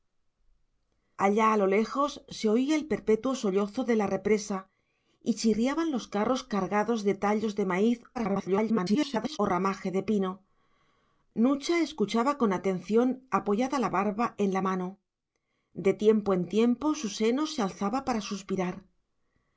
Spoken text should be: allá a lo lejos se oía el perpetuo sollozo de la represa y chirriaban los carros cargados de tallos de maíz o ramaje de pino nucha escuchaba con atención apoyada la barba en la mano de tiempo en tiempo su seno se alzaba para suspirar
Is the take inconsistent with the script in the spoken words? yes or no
yes